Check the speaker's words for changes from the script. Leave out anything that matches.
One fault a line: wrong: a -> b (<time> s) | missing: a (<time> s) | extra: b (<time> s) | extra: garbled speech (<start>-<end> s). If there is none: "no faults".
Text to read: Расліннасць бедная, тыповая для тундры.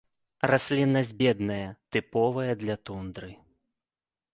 no faults